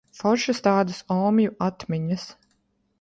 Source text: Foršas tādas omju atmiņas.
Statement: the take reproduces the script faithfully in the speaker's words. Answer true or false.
true